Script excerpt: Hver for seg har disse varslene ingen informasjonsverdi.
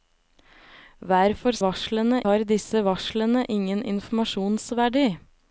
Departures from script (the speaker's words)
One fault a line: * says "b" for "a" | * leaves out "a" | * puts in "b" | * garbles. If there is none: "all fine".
* says "varslene" for "seg"